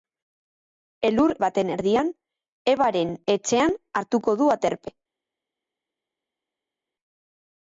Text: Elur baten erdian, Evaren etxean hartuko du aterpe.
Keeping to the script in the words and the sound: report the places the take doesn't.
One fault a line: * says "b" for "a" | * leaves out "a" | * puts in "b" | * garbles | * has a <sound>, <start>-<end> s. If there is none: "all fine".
all fine